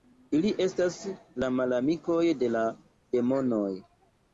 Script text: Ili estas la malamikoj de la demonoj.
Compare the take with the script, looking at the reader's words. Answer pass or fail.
pass